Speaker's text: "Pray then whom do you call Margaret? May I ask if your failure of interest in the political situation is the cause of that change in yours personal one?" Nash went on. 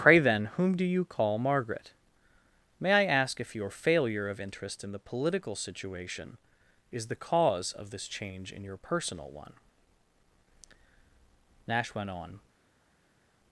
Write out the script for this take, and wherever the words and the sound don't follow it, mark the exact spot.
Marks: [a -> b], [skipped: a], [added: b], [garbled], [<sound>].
"Pray then whom do you call Margaret? May I ask if your failure of interest in the political situation is the cause of [that -> this] change in [yours -> your] personal one?" Nash went on.